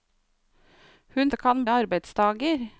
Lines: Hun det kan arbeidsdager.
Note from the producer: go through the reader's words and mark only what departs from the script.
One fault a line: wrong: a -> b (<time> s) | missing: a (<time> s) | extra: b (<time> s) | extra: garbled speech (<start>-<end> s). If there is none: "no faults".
no faults